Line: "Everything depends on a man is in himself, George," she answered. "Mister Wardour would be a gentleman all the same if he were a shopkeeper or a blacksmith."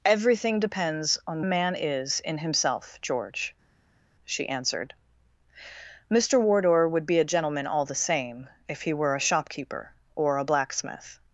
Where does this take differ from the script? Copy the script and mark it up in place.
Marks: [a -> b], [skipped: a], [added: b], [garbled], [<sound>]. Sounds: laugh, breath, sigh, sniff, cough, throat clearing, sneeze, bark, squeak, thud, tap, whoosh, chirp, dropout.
"Everything depends on a man is in himself, George," she answered. "Mister Wardour would be a gentleman all the same if he were a shopkeeper or a blacksmith."